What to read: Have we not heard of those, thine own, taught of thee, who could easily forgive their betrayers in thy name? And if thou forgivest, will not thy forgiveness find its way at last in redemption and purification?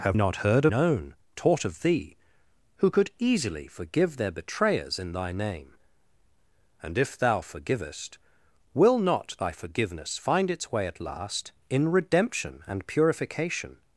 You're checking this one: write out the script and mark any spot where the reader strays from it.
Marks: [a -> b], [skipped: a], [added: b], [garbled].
Have [skipped: we] not heard [skipped: of those, thine] own, taught of thee, who could easily forgive their betrayers in thy name? And if thou forgivest, will not thy forgiveness find its way at last in redemption and purification?